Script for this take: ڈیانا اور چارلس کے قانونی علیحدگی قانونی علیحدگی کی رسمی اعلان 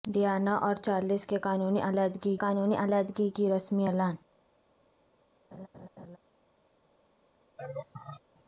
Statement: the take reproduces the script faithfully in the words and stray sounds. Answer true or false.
false